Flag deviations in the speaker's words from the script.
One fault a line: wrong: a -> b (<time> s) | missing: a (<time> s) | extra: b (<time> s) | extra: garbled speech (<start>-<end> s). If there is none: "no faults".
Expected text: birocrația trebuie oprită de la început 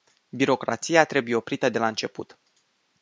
no faults